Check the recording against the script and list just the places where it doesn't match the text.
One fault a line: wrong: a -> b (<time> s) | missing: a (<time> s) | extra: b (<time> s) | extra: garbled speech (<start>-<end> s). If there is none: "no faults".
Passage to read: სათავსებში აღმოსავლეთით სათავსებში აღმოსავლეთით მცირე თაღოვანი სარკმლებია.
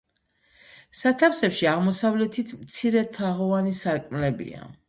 missing: სათავსებში აღმოსავლეთით (2.6 s)